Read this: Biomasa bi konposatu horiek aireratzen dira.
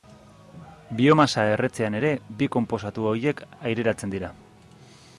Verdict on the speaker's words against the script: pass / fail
fail